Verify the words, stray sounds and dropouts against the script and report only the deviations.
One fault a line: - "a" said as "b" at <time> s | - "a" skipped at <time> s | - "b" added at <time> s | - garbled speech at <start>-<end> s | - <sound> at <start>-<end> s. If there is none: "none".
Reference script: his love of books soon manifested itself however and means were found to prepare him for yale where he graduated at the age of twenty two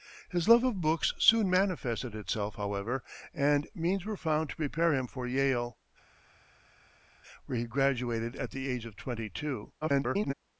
- garbled speech at 9.8-10.3 s